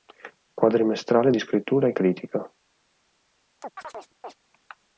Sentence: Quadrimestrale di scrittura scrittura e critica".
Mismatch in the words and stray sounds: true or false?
true